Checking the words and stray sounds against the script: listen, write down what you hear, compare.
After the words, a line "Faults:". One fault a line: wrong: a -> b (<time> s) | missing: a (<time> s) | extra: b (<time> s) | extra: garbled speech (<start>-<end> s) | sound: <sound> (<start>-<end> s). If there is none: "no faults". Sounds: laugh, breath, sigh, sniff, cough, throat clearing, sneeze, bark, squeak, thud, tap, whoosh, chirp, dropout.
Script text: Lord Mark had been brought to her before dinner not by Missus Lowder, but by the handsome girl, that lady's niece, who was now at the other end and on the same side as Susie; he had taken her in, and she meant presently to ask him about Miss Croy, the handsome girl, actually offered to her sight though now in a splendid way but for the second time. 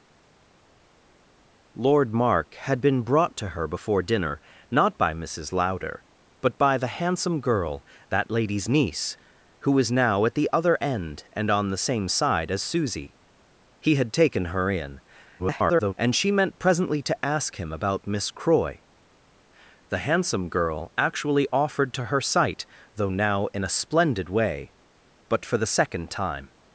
Lord Mark had been brought to her before dinner not by Missus Lowder, but by the handsome girl, that lady's niece, who was now at the other end and on the same side as Susie; he had taken her in, [garbled] and she meant presently to ask him about Miss Croy, the handsome girl, actually offered to her sight though now in a splendid way but for the second time.
Faults:
extra: garbled speech (15.4-15.9 s)